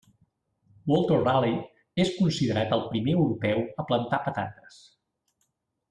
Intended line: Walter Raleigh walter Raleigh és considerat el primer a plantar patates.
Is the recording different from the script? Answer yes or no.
yes